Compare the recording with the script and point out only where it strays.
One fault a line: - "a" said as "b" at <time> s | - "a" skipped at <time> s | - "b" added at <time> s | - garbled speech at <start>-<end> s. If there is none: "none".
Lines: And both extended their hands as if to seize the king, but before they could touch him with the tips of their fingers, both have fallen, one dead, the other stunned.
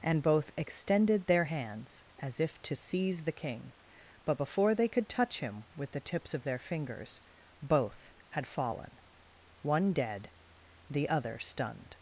- "have" said as "had" at 8.3 s